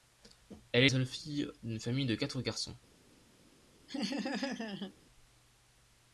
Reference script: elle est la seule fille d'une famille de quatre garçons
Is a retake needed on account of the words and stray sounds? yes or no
yes